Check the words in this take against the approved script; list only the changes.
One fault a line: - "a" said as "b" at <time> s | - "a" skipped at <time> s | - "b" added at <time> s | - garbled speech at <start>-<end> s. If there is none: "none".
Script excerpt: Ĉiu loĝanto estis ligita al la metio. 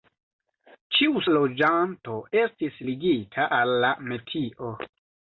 none